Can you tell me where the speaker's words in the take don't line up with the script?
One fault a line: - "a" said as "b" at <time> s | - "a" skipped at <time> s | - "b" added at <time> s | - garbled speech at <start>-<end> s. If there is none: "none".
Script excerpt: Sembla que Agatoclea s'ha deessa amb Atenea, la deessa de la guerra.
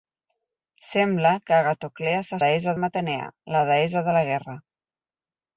none